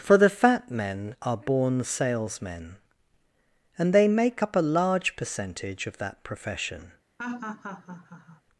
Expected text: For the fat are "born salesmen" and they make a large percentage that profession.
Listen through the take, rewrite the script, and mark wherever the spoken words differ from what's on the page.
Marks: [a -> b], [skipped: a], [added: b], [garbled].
For the fat [added: men] are "born salesmen" and they make [added: up] a large percentage [added: of] that profession.